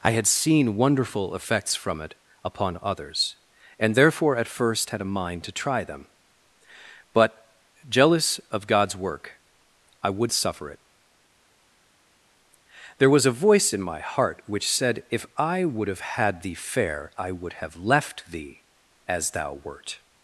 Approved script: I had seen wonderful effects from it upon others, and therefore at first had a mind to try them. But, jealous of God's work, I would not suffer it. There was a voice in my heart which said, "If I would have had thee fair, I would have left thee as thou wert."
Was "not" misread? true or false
true